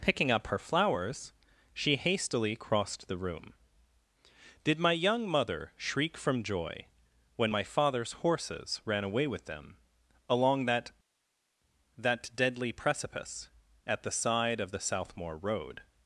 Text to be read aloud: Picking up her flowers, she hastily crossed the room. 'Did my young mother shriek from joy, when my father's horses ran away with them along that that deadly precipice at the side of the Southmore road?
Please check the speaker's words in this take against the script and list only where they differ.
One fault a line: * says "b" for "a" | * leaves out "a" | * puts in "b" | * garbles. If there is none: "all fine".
all fine